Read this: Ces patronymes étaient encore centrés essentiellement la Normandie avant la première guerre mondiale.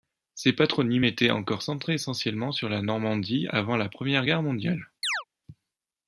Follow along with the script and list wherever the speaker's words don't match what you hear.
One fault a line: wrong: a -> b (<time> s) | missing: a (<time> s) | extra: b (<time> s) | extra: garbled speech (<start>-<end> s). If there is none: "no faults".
extra: sur (2.5 s)